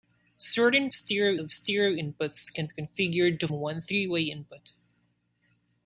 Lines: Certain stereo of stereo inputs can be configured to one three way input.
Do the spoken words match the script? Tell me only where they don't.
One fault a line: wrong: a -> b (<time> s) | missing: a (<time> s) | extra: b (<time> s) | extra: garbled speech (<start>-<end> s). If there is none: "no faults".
no faults